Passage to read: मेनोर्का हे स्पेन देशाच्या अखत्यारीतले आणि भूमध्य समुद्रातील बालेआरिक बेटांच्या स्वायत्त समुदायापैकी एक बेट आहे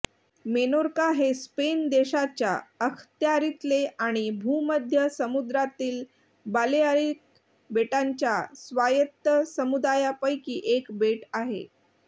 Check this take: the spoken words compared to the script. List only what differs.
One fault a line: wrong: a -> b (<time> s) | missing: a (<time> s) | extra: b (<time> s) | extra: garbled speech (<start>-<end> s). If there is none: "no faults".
no faults